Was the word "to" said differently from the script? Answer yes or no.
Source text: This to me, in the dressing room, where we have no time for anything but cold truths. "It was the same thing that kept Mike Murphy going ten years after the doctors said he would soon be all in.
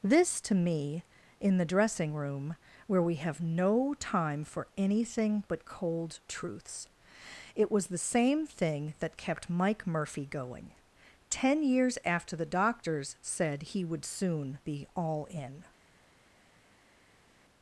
no